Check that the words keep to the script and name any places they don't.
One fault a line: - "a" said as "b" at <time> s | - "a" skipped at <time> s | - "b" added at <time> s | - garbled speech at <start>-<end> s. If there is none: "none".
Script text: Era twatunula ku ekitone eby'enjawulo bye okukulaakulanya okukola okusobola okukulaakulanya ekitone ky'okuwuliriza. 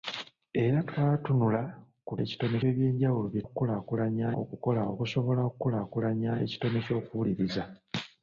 none